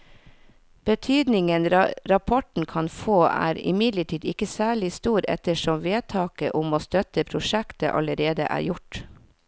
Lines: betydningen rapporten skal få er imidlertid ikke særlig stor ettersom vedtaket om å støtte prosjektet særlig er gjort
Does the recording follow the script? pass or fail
fail